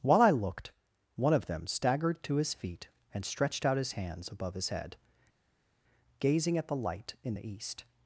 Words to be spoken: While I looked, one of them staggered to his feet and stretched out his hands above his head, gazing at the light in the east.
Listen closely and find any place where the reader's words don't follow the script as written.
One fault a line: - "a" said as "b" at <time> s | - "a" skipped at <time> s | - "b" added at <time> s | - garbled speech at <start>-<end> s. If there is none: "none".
none